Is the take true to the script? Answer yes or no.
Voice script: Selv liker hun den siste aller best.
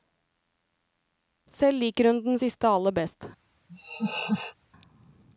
yes